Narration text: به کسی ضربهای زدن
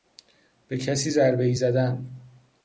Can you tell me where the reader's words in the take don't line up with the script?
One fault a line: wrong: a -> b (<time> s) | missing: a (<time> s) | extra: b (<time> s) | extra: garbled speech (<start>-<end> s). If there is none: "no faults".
no faults